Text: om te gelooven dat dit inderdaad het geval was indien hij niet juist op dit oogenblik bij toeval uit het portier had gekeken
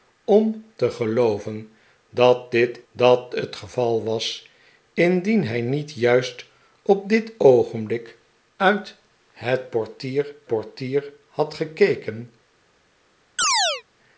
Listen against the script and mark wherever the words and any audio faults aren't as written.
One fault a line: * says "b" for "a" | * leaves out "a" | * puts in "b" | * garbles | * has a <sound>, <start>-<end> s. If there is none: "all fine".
* says "dat" for "inderdaad"
* leaves out "bij toeval"
* puts in "portier"
* has a chirp, 13.4-13.8 s